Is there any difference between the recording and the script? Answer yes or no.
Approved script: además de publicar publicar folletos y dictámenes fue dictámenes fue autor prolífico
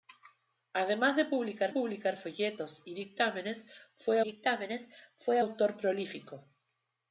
no